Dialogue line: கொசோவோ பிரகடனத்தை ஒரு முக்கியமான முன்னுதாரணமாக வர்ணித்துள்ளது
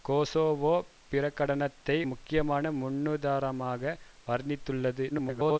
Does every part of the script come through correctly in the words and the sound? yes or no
no